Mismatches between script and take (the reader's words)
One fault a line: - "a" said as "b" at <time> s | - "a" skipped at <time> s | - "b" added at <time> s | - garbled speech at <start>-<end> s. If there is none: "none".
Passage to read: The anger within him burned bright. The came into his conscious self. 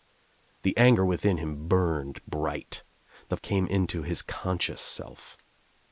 none